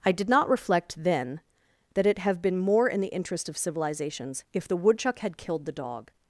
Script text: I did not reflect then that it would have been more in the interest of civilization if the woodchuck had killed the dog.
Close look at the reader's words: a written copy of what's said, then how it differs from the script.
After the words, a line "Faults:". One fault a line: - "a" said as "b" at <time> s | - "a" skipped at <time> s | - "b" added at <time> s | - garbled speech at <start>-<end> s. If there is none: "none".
I did not reflect then that it have been more in the interest of civilizations if the woodchuck had killed the dog.
Faults:
- "would" skipped at 2.2 s
- "civilization" said as "civilizations" at 3.6 s